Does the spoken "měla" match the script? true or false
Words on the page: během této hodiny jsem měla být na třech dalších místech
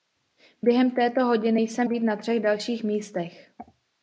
false